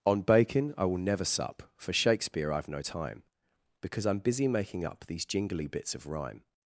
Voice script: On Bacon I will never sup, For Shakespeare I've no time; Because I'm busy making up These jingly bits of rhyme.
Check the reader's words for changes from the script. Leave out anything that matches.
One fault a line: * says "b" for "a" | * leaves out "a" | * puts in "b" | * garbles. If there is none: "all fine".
all fine